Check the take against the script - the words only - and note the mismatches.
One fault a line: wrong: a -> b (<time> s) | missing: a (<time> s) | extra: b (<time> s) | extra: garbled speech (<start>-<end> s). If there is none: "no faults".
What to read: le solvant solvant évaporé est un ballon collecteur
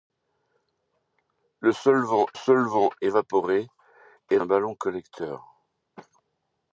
no faults